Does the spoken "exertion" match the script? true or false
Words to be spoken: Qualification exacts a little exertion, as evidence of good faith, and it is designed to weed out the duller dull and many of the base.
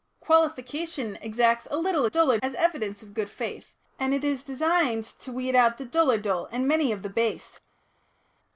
false